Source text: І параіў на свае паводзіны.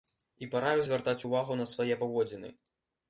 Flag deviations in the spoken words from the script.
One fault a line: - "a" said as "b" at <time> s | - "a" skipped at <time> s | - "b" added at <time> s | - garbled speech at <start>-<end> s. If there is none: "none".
- "звяртаць увагу" added at 0.9 s